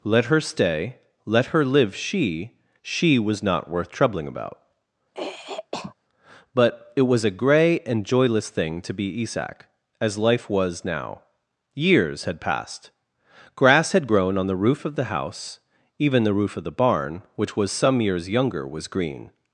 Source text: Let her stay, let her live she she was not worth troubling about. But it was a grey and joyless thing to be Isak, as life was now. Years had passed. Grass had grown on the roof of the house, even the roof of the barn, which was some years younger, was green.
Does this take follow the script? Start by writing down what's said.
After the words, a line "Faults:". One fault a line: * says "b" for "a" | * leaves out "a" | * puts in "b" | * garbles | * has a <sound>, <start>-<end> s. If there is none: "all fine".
Let her stay, let her live she she was not worth troubling about. But it was a grey and joyless thing to be Isak, as life was now. Years had passed. Grass had grown on the roof of the house, even the roof of the barn, which was some years younger, was green.
Faults:
* has a throat clearing, 5.1-6.0 s